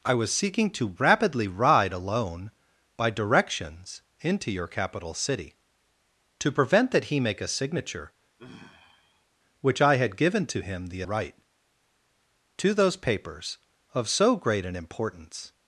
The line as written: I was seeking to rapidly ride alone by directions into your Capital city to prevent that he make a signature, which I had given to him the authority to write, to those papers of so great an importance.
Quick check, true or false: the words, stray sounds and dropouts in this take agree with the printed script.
false